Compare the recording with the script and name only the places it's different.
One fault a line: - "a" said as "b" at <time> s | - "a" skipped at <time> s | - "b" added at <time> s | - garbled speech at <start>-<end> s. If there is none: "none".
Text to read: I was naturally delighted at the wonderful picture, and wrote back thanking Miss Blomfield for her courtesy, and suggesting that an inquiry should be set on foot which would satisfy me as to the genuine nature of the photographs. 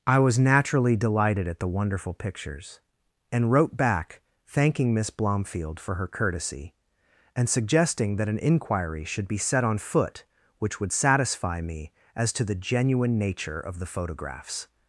- "picture" said as "pictures" at 2.1 s